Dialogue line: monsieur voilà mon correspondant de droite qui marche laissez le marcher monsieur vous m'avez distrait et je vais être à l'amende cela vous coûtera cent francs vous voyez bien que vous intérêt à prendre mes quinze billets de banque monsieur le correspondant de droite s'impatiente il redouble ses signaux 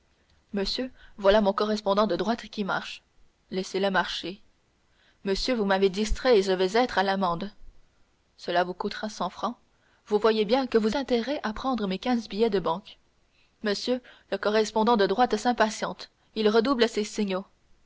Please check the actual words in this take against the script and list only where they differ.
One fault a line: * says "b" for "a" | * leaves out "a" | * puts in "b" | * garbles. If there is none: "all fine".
all fine